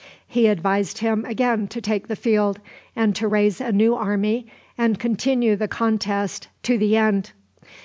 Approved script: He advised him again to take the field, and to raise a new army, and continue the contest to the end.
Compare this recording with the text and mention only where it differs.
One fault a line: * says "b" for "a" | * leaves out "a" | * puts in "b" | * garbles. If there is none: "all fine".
all fine